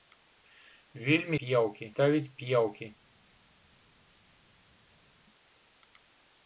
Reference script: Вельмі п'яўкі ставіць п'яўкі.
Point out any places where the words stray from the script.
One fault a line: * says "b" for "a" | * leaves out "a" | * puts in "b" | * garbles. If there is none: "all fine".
all fine